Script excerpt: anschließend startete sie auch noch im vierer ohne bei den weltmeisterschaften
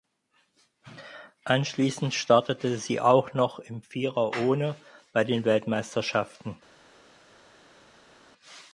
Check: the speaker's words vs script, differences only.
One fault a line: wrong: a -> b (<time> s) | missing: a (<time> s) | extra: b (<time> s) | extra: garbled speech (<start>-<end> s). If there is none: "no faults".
no faults